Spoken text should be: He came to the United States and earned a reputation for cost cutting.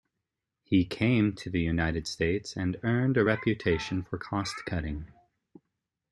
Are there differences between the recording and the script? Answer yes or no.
no